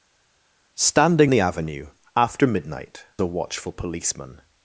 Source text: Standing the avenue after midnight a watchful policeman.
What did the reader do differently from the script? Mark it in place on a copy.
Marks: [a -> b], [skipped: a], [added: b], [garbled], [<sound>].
Standing the avenue after midnight a watchful policeman.